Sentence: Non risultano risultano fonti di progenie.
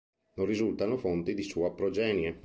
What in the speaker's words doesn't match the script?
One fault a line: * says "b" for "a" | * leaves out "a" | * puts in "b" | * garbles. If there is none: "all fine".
* leaves out "risultano"
* puts in "sua"